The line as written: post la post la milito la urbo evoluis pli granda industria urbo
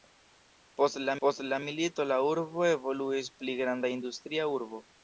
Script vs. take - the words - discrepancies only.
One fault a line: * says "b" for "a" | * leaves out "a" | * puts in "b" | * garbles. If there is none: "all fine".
all fine